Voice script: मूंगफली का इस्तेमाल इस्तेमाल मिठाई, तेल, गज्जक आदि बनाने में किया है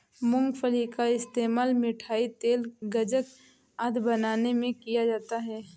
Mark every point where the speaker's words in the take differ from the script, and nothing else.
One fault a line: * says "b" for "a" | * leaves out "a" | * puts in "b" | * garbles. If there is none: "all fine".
* leaves out "इस्तेमाल"
* puts in "जाता"